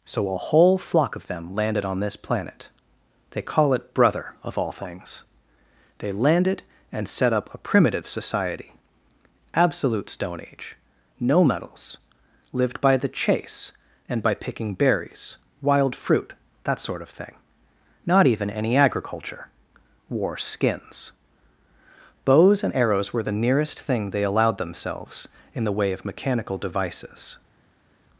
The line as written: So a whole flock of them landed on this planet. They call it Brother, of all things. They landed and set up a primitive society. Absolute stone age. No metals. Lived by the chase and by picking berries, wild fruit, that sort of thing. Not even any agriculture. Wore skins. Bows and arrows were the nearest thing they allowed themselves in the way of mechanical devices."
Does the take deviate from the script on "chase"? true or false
false